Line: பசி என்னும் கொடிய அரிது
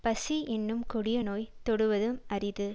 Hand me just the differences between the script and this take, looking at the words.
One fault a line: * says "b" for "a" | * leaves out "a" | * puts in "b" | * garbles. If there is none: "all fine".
* puts in "நோய் தொடுவதும்"